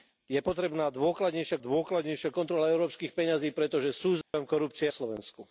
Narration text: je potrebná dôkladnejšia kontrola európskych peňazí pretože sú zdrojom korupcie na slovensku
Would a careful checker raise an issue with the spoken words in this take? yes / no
yes